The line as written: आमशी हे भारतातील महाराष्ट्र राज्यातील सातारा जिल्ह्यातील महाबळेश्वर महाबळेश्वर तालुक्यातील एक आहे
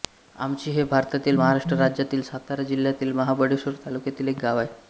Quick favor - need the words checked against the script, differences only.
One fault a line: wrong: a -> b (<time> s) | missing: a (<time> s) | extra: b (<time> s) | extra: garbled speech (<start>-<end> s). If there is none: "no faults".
missing: महाबळेश्वर (3.7 s)
extra: गाव (4.4 s)